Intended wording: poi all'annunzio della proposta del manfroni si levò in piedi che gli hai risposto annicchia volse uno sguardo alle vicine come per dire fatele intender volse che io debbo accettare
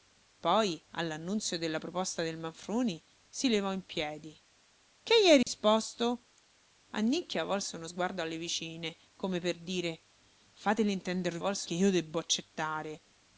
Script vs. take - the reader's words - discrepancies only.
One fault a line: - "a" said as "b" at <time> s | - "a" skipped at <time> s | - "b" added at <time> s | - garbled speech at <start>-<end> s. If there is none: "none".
none